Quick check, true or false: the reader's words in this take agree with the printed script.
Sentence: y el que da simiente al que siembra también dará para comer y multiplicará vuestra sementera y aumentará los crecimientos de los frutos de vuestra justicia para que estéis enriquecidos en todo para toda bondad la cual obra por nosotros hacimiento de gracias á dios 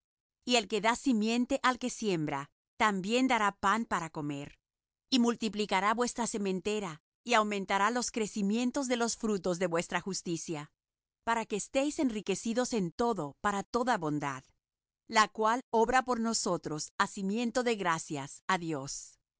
false